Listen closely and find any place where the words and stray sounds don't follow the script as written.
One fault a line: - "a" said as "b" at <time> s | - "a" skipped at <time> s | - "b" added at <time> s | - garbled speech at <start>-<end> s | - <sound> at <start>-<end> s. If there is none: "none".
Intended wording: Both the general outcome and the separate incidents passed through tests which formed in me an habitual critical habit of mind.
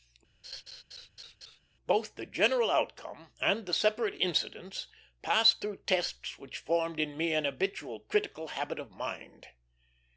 - laugh at 0.4-1.6 s